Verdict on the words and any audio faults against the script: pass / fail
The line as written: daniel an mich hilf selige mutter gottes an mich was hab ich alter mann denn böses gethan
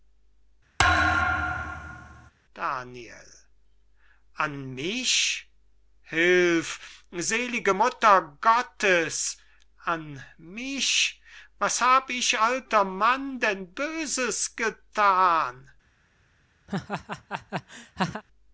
fail